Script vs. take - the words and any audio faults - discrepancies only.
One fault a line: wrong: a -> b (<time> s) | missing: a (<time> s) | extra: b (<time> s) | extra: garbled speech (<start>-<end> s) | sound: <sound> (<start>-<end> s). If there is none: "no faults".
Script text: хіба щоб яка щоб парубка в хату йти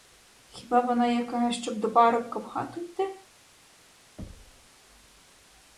wrong: щоб -> вона (0.8 s)
extra: до (1.8 s)
sound: thud (4.2-4.7 s)